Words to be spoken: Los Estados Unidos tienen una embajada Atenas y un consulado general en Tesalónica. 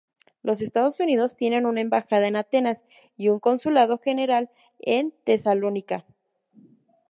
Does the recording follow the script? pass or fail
fail